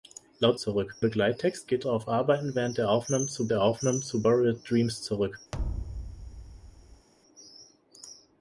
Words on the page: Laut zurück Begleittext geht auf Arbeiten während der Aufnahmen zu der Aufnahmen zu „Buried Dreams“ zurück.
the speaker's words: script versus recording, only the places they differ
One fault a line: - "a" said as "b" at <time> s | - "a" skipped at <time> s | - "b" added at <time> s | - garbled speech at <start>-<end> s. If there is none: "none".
none